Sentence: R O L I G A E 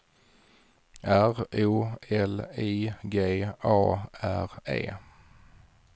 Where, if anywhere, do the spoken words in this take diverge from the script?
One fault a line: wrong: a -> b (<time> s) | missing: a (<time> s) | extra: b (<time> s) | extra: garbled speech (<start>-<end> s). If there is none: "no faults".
extra: R (4.1 s)